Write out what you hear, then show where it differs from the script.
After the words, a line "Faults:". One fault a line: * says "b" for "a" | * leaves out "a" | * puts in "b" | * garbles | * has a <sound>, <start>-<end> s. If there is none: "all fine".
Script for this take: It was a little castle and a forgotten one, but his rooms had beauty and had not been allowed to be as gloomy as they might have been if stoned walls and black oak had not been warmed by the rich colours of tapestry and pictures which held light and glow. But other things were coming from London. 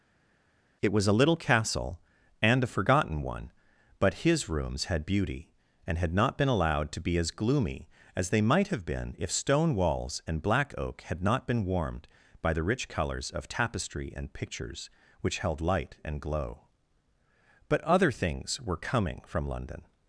It was a little castle and a forgotten one, but his rooms had beauty and had not been allowed to be as gloomy as they might have been if stone walls and black oak had not been warmed by the rich colours of tapestry and pictures which held light and glow. But other things were coming from London.
Faults:
* says "stone" for "stoned"